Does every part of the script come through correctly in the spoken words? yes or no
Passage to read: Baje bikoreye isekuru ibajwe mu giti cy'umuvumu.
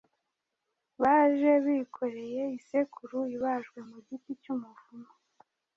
yes